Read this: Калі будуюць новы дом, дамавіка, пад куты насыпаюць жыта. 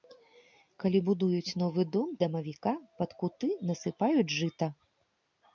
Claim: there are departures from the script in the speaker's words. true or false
false